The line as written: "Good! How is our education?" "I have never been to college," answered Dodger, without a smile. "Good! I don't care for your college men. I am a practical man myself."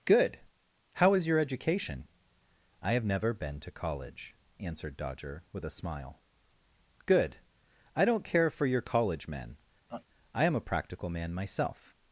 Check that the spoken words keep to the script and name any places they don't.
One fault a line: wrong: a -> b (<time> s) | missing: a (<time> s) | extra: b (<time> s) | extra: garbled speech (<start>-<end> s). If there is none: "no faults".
wrong: our -> your (1.3 s)
wrong: without -> with (5.5 s)